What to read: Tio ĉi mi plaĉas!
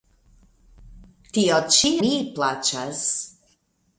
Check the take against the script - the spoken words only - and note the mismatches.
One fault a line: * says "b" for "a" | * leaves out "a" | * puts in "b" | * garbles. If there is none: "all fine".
all fine